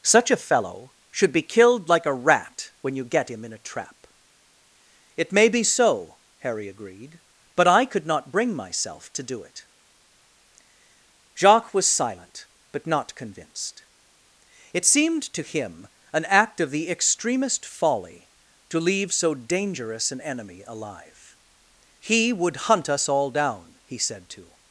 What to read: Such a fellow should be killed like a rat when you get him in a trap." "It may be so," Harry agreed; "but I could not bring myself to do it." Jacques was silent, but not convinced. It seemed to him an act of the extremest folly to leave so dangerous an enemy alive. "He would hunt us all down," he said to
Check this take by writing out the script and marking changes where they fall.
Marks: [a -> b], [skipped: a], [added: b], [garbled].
Such a fellow should be killed like a rat when you get him in a trap." "It may be so," Harry agreed; "but I could not bring myself to do it." Jacques was silent, but not convinced. It seemed to him an act of the extremest folly to leave so dangerous an enemy alive. "He would hunt us all down," he said to